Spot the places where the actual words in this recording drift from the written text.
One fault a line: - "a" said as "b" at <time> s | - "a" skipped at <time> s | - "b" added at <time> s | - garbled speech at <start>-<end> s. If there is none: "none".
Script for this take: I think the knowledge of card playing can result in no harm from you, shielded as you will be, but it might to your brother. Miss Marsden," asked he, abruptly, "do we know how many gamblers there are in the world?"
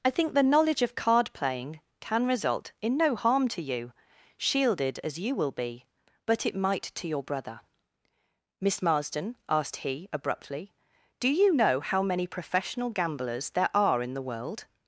- "from" said as "to" at 3.5 s
- "we" said as "you" at 11.3 s
- "professional" added at 12.3 s